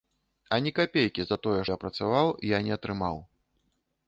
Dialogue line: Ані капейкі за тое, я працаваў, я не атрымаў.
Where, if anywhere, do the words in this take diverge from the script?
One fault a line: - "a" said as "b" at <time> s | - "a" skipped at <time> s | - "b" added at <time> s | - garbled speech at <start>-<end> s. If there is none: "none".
none